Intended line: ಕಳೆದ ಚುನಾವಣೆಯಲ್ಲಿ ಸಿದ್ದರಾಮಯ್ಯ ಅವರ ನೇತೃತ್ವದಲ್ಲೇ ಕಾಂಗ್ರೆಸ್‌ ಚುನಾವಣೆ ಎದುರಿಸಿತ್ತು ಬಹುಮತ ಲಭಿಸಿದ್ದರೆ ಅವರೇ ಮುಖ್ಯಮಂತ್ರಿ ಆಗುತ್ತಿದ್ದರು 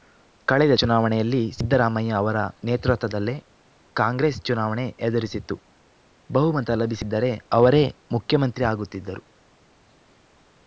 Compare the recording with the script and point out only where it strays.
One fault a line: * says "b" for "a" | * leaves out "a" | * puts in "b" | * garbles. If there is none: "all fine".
all fine